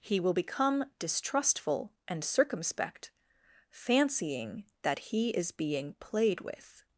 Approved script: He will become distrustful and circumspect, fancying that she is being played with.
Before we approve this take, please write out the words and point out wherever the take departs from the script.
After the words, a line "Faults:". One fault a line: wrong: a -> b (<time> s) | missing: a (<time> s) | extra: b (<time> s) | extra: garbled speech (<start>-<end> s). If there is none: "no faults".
He will become distrustful and circumspect, fancying that he is being played with.
Faults:
wrong: she -> he (5.0 s)